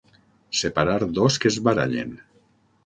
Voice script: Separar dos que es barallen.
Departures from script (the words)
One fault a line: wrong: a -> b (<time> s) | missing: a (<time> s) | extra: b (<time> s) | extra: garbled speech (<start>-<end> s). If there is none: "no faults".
no faults